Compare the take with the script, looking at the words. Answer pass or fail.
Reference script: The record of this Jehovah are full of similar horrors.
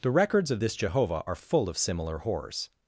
fail